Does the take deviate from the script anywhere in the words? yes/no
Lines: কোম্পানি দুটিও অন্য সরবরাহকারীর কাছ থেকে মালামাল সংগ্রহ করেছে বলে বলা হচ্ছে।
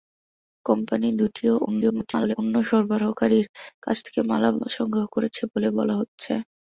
yes